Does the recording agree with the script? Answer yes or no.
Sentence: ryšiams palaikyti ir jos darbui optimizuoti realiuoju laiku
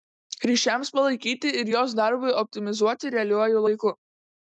yes